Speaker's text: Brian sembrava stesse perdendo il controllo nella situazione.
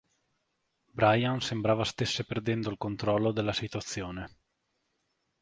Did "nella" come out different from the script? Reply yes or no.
yes